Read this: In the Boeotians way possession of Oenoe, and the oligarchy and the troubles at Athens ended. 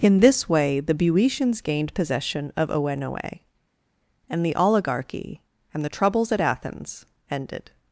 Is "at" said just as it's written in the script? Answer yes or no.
yes